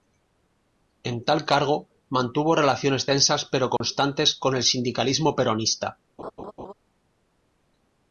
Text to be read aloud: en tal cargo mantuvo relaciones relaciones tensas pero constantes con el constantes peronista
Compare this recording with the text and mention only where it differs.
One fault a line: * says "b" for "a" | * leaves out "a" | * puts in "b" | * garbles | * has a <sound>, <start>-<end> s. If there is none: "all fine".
* leaves out "relaciones"
* has a dropout, 3.8-3.8 s
* says "sindicalismo" for "constantes"
* has a laugh, 6.2-6.7 s